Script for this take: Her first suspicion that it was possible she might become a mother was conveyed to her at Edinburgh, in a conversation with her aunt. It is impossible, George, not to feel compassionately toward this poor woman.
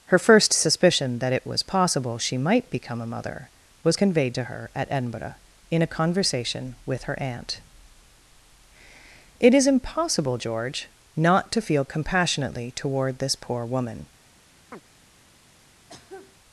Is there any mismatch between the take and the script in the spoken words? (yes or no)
no